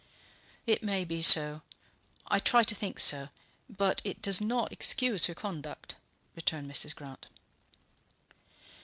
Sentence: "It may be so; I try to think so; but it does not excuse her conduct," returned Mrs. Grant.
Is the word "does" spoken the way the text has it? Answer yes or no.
yes